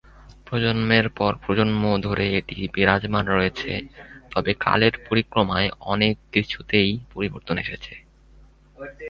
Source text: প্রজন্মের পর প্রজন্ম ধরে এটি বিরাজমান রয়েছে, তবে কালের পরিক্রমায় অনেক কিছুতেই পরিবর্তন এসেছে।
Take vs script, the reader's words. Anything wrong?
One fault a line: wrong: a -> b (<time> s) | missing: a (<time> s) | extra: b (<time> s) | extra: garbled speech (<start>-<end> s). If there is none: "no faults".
no faults